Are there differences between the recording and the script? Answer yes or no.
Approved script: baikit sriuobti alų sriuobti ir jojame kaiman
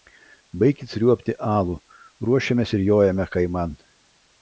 yes